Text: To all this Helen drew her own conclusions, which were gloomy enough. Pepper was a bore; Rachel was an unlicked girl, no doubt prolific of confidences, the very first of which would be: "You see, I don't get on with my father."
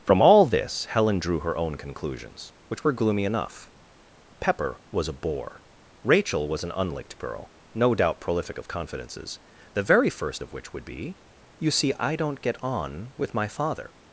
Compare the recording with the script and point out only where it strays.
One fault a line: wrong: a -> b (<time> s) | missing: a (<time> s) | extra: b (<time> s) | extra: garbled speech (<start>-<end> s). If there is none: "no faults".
wrong: To -> From (0.1 s)